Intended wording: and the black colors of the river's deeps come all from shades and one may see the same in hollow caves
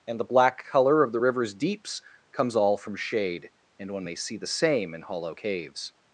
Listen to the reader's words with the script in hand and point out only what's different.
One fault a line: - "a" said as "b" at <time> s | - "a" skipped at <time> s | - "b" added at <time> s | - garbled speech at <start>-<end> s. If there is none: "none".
- "colors" said as "color" at 0.7 s
- "come" said as "comes" at 2.3 s
- "shades" said as "shade" at 2.9 s